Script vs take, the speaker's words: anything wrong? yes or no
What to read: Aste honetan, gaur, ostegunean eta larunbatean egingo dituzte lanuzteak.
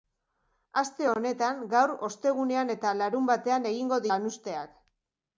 yes